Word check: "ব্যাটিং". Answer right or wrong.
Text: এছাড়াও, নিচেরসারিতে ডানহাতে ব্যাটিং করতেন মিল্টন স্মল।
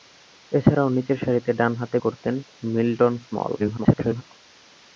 wrong